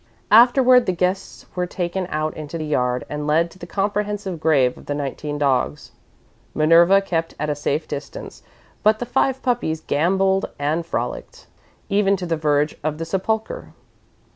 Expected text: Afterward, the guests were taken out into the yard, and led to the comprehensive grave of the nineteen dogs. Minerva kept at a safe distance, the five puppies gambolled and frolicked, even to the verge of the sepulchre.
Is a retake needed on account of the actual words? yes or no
yes